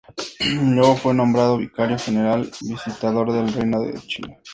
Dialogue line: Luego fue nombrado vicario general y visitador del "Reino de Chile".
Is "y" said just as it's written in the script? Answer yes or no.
no